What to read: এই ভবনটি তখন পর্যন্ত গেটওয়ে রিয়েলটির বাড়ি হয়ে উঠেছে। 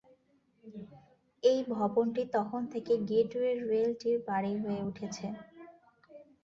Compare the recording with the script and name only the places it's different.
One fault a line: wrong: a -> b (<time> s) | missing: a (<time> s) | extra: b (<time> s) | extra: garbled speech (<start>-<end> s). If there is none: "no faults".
wrong: পর্যন্ত -> থেকে (2.7 s)